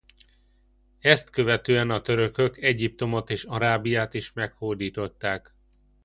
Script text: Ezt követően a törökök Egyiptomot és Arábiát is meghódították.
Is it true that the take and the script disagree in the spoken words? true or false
false